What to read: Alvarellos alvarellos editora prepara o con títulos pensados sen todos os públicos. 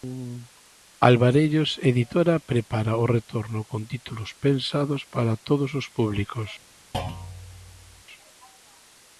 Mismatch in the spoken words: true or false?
true